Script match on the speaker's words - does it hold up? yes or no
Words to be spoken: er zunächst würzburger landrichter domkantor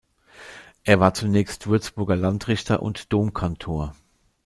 no